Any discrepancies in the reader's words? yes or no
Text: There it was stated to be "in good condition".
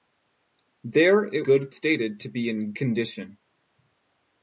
yes